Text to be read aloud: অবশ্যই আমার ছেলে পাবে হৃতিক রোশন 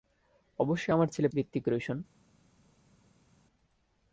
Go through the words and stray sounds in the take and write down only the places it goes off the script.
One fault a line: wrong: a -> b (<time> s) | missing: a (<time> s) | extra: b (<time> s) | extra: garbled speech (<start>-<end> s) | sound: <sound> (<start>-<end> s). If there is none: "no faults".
missing: পাবে (1.3 s)